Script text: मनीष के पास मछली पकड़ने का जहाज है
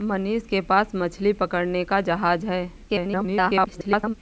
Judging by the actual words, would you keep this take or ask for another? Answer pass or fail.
fail